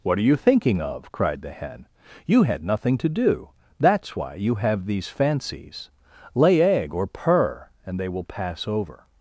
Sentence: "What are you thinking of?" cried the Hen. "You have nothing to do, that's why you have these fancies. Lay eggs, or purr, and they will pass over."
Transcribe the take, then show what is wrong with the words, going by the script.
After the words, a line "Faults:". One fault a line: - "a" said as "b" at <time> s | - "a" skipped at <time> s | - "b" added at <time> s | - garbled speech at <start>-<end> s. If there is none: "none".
"What are you thinking of?" cried the Hen. "You had nothing to do, that's why you have these fancies. Lay egg, or purr, and they will pass over."
Faults:
- "have" said as "had" at 2.4 s
- "eggs" said as "egg" at 6.6 s